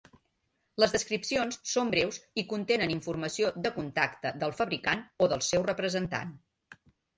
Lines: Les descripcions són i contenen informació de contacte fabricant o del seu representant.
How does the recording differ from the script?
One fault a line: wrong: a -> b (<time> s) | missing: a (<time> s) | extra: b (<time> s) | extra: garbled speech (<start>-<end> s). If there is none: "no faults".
extra: breus (1.9 s)
extra: del (4.5 s)